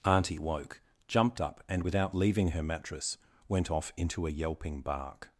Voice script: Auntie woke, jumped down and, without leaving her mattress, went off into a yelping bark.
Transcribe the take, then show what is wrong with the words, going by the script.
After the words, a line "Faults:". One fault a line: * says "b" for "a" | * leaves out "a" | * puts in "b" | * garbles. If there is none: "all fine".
Auntie woke, jumped up and, without leaving her mattress, went off into a yelping bark.
Faults:
* says "up" for "down"